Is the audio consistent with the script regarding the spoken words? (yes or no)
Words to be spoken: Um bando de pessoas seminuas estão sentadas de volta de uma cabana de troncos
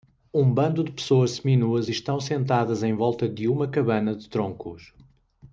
no